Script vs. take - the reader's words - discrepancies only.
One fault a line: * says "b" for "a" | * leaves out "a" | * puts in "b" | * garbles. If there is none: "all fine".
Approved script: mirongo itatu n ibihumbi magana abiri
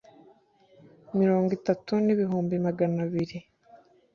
all fine